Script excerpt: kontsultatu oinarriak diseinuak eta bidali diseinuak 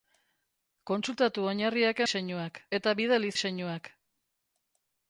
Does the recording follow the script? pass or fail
pass